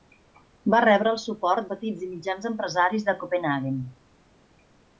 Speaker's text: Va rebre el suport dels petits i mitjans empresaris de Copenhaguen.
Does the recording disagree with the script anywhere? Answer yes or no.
yes